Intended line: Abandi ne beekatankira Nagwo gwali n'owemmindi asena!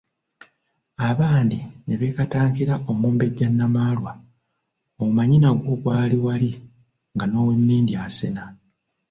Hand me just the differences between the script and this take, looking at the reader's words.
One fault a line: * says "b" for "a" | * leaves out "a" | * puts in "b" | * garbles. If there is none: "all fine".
* puts in "Omumbejja Namaalwa omanyi"
* puts in "wali nga"